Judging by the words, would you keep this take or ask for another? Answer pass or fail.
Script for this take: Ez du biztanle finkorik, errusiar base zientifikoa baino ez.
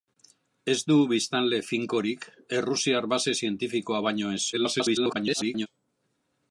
fail